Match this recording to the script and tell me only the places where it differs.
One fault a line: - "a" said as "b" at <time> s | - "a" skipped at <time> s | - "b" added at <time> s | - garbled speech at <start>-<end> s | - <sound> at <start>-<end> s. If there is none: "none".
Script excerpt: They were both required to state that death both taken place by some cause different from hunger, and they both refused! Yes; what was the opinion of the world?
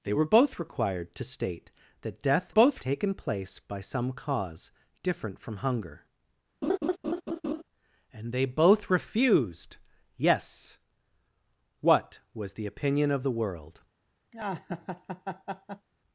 - laugh at 6.6-7.6 s
- laugh at 14.3-15.9 s